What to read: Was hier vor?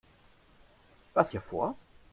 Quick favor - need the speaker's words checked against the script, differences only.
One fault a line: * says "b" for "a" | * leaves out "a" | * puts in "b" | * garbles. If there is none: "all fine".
all fine